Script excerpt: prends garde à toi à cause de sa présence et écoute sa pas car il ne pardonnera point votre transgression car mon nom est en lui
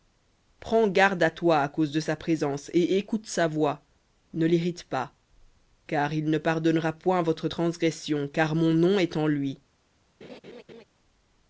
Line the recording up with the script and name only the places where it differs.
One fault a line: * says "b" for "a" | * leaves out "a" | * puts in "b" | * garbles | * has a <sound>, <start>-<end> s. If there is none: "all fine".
* puts in "voix ne l'irrite"
* has a laugh, 10.2-10.8 s